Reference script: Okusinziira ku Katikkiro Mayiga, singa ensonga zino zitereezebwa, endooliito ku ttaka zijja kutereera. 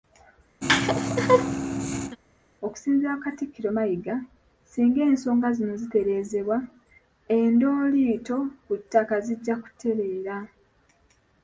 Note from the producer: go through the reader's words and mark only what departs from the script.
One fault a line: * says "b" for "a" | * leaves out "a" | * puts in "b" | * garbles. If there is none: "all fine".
all fine